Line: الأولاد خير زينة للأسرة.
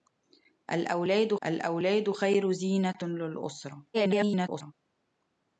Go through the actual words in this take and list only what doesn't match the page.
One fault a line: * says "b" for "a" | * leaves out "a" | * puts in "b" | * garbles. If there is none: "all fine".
* puts in "الأولاد"
* garbles